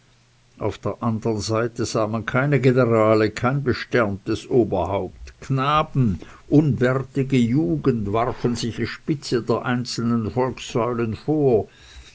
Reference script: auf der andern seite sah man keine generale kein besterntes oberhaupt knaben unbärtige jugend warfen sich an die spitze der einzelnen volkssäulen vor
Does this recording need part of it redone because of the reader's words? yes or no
yes